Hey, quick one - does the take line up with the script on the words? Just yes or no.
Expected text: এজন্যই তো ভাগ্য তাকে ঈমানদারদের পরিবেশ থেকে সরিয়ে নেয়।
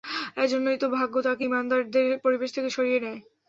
yes